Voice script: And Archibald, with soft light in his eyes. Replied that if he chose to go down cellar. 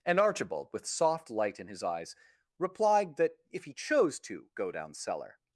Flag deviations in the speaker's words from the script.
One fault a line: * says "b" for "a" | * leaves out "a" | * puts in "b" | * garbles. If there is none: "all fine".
all fine